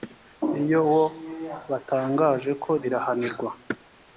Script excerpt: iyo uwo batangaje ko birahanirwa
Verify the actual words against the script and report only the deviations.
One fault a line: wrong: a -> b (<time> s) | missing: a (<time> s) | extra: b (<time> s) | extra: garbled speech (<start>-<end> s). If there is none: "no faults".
no faults